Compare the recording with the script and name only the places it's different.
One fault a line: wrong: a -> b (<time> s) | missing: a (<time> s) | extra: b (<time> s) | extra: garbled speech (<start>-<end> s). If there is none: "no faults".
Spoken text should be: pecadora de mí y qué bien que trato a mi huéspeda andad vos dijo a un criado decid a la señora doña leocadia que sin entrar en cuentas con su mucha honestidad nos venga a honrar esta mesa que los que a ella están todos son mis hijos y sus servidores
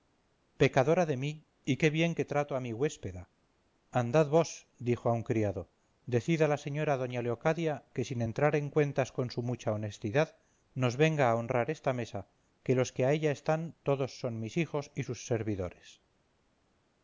no faults